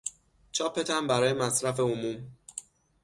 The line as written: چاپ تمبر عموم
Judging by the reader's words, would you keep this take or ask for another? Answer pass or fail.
fail